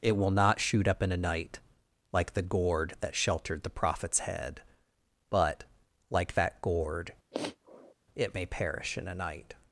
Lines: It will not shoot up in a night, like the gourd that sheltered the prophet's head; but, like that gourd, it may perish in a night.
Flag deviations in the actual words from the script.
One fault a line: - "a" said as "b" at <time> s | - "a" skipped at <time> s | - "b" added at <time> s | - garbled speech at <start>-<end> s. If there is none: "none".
none